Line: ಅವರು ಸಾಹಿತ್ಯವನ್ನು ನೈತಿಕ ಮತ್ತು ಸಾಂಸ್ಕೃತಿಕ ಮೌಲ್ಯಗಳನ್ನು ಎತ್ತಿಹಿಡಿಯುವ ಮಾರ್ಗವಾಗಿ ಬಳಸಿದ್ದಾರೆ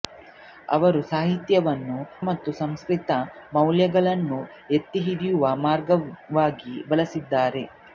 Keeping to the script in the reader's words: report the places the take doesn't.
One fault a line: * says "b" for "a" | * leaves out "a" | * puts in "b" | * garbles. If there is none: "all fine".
* leaves out "ನೈತಿಕ"